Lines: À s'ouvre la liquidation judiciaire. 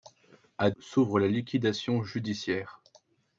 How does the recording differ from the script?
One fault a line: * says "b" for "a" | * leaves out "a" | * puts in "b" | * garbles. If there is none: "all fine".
all fine